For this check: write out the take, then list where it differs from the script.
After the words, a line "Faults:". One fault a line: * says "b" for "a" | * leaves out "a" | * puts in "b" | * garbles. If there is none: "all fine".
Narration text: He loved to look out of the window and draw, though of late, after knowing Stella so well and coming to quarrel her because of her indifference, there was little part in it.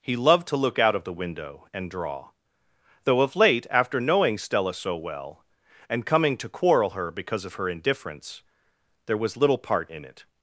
He loved to look out of the window and draw, though of late, after knowing Stella so well and coming to quarrel her because of her indifference, there was little part in it.
Faults:
all fine